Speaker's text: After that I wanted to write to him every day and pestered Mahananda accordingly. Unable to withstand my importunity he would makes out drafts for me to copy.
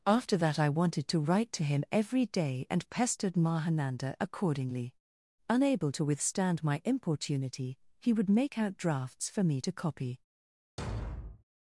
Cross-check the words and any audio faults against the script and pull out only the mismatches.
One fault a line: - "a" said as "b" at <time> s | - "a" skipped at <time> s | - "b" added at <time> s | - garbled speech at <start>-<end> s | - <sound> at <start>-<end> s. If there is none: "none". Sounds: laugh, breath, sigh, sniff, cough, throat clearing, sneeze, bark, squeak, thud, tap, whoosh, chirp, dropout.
- "makes" said as "make" at 8.3 s
- thud at 10.8-11.4 s